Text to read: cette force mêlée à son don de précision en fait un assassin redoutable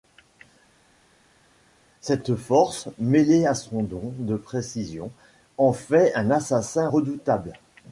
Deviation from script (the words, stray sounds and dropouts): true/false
false